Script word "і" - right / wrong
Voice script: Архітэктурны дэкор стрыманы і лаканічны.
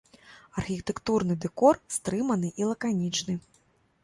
right